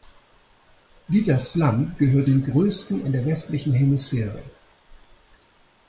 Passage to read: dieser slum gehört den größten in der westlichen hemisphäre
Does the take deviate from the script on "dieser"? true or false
false